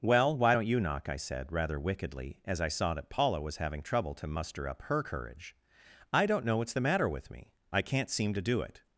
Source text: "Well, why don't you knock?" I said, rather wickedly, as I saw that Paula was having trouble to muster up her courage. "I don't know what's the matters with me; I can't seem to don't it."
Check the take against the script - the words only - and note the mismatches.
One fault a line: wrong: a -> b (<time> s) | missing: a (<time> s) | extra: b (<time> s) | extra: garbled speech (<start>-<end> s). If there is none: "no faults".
wrong: matters -> matter (6.8 s)
wrong: don't -> do (8.4 s)